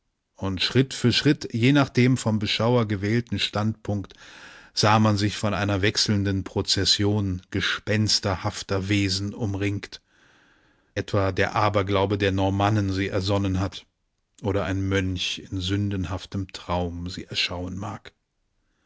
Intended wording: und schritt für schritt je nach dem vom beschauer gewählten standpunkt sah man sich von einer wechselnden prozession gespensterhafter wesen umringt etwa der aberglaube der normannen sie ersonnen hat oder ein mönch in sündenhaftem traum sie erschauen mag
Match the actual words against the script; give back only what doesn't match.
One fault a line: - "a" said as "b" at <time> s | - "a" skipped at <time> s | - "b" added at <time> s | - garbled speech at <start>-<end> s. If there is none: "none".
none